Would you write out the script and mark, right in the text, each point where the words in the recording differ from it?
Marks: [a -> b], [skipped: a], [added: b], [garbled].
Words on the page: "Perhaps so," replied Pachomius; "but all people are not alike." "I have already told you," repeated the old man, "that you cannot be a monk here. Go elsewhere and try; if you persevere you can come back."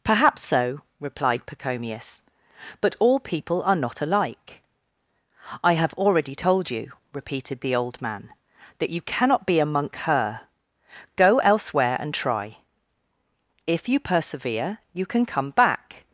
"Perhaps so," replied Pachomius; "but all people are not alike." "I have already told you," repeated the old man, "that you cannot be a monk [here. -> her] Go elsewhere and try; if you persevere you can come back."